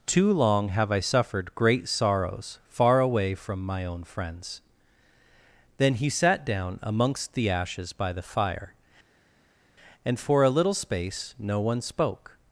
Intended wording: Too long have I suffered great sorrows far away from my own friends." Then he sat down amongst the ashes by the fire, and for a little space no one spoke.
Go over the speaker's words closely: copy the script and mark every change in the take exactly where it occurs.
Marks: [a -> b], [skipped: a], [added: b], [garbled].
Too long have I suffered great sorrows far away from my own friends." Then he sat down amongst the ashes by the fire, and for a little space no one spoke.